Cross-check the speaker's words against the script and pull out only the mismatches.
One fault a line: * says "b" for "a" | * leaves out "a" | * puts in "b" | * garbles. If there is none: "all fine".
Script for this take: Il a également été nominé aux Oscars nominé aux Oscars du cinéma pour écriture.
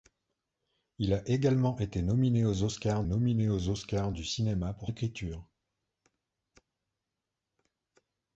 all fine